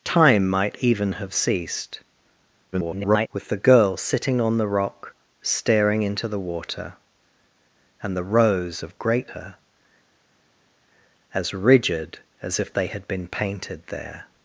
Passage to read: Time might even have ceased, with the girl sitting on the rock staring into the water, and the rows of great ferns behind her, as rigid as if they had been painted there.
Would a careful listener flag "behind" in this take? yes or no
yes